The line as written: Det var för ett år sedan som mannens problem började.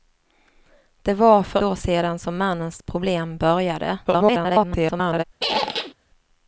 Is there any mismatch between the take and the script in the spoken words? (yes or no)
yes